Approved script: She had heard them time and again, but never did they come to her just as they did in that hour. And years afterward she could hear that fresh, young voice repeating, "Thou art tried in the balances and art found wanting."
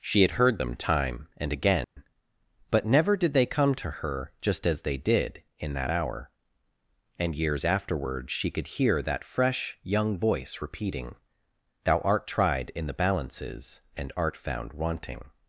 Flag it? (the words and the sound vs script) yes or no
yes